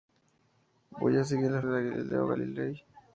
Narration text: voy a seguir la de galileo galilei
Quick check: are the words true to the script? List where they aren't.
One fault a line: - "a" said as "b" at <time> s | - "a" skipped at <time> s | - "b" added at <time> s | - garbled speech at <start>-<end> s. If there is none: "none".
none